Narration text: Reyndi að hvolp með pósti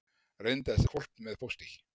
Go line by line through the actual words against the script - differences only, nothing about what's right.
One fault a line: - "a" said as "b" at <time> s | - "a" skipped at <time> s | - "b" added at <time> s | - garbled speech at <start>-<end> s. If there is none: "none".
none